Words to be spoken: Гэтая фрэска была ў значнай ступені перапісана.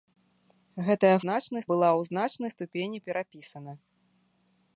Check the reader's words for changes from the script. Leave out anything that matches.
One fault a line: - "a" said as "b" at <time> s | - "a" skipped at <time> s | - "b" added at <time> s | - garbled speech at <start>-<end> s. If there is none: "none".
- "фрэска" said as "значнай" at 1.2 s